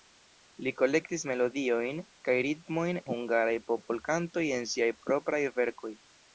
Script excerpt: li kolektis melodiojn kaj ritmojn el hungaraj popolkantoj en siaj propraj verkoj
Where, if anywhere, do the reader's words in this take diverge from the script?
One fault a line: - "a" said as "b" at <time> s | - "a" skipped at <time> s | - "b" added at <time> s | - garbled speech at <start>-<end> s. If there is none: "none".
- "el" skipped at 3.0 s